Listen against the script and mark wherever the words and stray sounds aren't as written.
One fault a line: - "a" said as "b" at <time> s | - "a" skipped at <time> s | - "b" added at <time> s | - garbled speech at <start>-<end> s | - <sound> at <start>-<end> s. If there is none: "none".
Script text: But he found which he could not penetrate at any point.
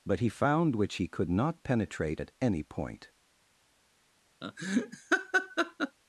- laugh at 4.4-6.0 s